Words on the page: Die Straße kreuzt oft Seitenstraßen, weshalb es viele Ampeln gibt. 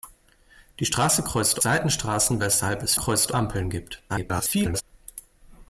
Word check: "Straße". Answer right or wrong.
right